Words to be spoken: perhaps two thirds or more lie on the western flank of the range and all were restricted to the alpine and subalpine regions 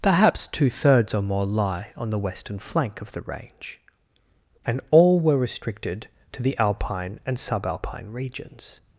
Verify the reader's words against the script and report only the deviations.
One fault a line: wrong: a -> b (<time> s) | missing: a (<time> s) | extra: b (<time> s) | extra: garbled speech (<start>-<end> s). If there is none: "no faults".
no faults